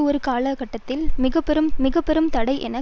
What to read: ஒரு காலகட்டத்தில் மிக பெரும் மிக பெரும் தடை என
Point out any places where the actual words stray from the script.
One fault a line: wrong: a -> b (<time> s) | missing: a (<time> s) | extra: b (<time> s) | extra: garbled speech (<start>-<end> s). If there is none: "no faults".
no faults